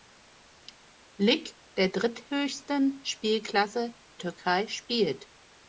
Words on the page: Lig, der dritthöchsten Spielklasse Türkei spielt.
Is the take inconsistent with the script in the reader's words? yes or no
no